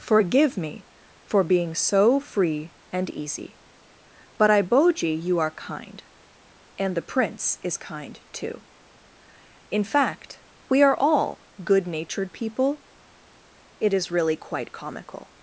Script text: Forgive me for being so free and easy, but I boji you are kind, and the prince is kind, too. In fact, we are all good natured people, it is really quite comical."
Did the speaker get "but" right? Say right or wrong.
right